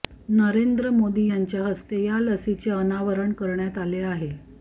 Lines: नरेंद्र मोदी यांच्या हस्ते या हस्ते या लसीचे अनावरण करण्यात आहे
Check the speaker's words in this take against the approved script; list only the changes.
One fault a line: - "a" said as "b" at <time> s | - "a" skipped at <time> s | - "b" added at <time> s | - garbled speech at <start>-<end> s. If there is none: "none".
- "हस्ते या" skipped at 2.2 s
- "आले" added at 3.8 s